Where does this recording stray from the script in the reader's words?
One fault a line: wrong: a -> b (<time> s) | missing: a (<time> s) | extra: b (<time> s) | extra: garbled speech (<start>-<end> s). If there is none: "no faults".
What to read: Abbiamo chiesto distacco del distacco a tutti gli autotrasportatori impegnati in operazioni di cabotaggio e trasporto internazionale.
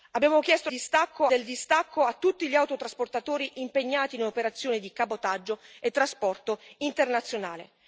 no faults